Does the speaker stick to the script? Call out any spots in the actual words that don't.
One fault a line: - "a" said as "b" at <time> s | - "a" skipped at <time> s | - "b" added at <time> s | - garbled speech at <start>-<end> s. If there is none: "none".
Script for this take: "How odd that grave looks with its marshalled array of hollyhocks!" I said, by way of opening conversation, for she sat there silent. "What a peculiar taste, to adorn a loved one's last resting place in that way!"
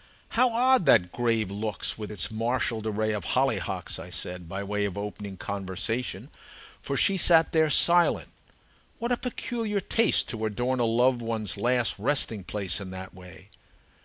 none